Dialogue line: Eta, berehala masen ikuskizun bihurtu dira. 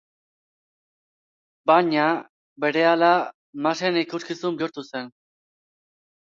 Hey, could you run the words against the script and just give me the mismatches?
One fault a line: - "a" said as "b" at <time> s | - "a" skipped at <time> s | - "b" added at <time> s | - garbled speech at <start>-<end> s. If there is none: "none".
- "Eta" said as "Baina" at 1.7 s
- "dira" said as "zen" at 4.9 s